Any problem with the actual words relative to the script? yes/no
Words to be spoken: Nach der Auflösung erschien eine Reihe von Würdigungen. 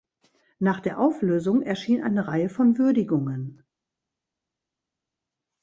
no